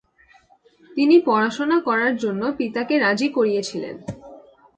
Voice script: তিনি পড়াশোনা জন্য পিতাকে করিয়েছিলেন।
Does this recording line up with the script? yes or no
no